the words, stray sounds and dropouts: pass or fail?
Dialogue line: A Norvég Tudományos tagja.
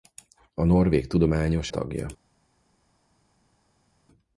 pass